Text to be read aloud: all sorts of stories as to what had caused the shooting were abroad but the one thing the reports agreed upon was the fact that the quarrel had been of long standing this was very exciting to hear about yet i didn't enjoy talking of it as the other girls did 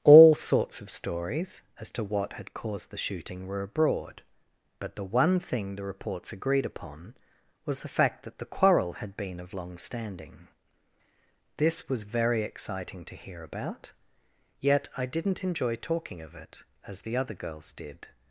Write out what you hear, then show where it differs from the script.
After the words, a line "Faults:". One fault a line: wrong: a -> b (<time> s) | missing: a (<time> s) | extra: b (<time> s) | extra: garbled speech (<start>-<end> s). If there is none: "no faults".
all sorts of stories as to what had caused the shooting were abroad but the one thing the reports agreed upon was the fact that the quarrel had been of long standing this was very exciting to hear about yet i didn't enjoy talking of it as the other girls did
Faults:
no faults